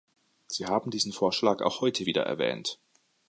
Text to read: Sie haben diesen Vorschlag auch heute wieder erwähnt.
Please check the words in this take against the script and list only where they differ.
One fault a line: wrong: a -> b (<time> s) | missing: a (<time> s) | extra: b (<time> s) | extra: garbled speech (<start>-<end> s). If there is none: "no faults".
no faults